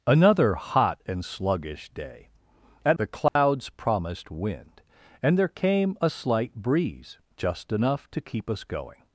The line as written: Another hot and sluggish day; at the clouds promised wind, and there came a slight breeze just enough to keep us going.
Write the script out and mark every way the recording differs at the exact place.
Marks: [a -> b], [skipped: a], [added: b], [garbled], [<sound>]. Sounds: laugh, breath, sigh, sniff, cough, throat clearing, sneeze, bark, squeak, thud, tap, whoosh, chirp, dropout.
Another hot and sluggish day; at the clouds [dropout] promised wind, and there came a slight breeze just enough to keep us going.